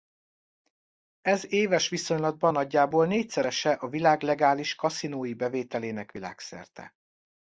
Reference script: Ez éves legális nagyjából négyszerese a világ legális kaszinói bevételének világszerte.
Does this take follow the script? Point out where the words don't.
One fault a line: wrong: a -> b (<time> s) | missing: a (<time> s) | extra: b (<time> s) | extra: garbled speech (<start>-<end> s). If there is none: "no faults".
wrong: legális -> viszonylatban (1.9 s)